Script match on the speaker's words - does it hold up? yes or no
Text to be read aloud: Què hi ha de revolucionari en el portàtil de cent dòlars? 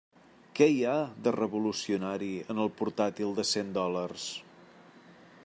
yes